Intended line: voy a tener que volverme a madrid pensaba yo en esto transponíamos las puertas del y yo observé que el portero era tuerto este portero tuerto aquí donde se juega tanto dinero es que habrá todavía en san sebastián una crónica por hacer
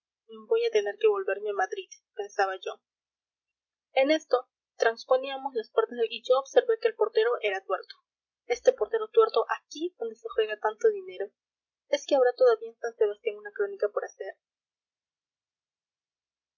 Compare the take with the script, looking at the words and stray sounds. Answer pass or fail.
pass